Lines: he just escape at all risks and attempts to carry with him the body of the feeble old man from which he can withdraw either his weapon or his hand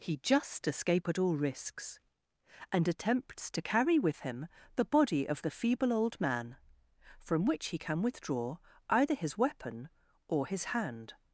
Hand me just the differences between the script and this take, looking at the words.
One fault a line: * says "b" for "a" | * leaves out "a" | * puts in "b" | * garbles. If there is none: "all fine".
all fine